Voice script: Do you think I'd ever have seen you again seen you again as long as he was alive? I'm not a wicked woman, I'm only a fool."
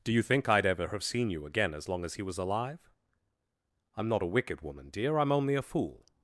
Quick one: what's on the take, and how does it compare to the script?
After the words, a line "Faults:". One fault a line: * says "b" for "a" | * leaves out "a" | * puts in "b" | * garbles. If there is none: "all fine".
Do you think I'd ever have seen you again as long as he was alive? I'm not a wicked woman, dear, I'm only a fool."
Faults:
* leaves out "seen you again"
* puts in "dear"